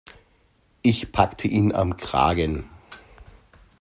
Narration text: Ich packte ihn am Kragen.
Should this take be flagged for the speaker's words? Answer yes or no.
no